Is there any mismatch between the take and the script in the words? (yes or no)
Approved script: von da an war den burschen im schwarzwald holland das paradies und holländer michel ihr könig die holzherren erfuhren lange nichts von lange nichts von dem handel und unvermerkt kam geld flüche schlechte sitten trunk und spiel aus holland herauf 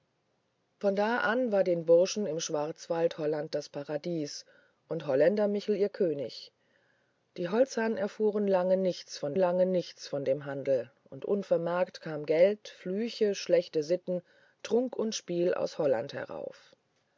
no